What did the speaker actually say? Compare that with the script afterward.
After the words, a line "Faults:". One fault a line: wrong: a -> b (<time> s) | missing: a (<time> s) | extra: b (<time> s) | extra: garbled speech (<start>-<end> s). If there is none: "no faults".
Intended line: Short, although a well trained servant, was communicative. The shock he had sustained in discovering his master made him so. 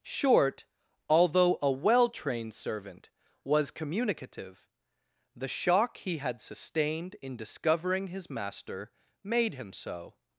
Short, although a well trained servant, was communicative. The shock he had sustained in discovering his master made him so.
Faults:
no faults